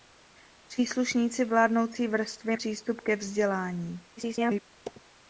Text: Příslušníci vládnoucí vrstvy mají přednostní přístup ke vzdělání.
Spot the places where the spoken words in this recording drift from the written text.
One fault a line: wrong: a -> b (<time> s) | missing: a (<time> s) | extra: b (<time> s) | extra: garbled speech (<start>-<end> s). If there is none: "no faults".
missing: mají přednostní (2.6 s)
extra: garbled speech (4.2-4.6 s)